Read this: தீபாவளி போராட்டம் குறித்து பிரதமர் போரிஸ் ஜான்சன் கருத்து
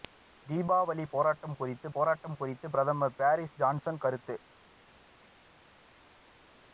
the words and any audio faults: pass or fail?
fail